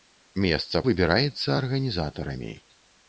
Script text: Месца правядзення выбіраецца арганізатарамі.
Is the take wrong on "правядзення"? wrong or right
wrong